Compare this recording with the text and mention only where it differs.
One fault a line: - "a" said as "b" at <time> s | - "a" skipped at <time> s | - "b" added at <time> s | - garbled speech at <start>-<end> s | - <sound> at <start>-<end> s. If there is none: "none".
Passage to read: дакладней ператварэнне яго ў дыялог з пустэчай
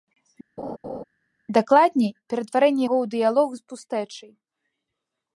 - laugh at 0.6-1.0 s